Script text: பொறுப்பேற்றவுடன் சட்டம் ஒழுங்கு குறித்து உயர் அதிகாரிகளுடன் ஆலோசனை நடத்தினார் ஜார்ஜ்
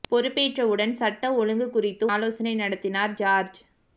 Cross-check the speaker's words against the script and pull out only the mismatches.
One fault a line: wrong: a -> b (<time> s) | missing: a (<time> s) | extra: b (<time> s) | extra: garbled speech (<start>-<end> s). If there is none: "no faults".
missing: உயர் அதிகாரிகளுடன் (2.0 s)